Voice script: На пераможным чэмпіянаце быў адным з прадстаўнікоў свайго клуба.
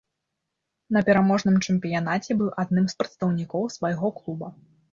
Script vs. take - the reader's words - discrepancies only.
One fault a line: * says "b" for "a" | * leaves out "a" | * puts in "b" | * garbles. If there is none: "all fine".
all fine